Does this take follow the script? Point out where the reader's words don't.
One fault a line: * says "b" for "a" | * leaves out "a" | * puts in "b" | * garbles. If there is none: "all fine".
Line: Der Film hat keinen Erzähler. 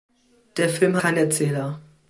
* leaves out "hat"